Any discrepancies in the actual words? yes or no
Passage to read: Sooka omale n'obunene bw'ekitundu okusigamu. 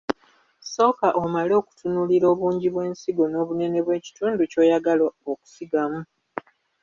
yes